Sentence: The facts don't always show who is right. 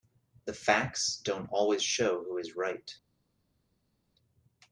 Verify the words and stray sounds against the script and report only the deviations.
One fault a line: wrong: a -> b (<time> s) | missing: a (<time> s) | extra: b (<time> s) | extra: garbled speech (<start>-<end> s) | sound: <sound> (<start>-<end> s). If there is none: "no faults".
no faults